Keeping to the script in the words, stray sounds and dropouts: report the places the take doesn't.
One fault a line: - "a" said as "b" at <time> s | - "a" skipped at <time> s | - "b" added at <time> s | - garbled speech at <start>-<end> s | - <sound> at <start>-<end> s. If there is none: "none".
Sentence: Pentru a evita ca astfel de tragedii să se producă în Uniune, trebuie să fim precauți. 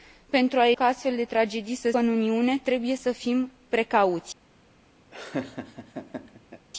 - "evita" skipped at 0.7 s
- "se producă" skipped at 1.9 s
- laugh at 5.1-6.7 s